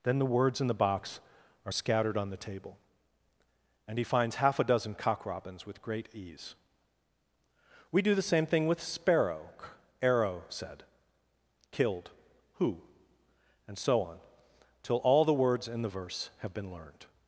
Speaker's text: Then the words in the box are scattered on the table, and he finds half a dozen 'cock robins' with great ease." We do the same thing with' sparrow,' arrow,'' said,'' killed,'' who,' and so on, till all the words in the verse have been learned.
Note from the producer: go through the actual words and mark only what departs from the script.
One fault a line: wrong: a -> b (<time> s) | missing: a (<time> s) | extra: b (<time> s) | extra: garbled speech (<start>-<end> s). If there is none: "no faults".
no faults